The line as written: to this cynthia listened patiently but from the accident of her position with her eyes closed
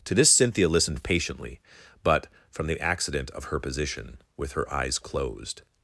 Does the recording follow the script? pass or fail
pass